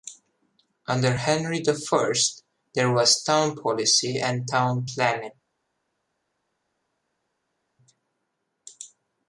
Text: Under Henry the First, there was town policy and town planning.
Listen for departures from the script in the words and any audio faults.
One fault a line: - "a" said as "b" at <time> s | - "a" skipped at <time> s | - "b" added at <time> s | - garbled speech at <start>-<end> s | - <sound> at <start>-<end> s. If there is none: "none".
none